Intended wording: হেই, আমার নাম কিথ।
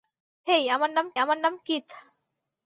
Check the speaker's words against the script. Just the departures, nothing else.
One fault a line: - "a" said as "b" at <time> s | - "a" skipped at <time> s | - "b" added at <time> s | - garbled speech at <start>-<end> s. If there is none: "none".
- "আমার নাম" added at 1.2 s